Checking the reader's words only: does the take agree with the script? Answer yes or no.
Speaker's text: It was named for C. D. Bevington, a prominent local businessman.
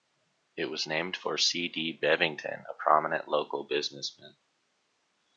yes